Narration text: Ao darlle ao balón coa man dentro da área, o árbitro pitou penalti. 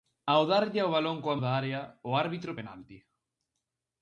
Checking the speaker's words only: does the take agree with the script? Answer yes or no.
no